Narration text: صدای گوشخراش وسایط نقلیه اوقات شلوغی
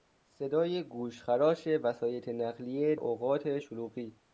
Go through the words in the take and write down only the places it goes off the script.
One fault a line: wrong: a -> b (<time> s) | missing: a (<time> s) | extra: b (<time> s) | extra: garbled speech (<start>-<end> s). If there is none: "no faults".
no faults